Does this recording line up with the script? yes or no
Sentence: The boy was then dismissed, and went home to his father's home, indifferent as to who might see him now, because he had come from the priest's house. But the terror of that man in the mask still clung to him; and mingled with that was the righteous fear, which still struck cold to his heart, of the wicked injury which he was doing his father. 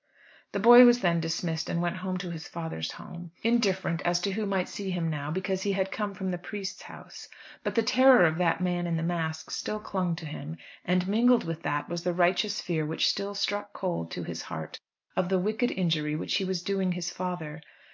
yes